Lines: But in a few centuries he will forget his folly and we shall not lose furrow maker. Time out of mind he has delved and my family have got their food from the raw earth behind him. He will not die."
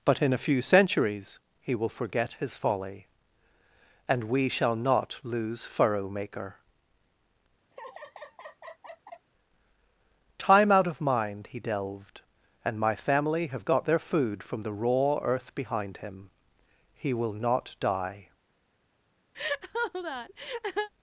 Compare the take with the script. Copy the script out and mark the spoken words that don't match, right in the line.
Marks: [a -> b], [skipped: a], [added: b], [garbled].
But in a few centuries he will forget his folly and we shall not lose furrow maker. Time out of mind he [skipped: has] delved and my family have got their food from the raw earth behind him. He will not die."